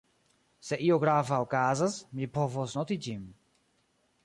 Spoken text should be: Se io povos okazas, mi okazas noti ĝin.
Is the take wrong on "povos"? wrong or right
wrong